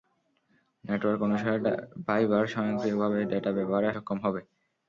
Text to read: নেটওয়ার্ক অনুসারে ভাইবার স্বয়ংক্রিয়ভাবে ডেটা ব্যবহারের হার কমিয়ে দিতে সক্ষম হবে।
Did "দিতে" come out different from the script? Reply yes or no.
yes